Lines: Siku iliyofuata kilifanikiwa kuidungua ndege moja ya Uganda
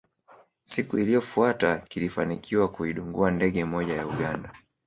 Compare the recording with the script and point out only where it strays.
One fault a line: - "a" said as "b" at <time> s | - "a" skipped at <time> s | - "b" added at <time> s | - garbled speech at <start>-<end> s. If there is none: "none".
none